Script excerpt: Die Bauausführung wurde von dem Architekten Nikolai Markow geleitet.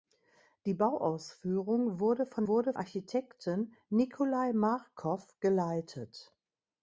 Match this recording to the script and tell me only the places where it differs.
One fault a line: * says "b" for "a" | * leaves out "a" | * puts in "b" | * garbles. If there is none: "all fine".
* says "wurde" for "dem"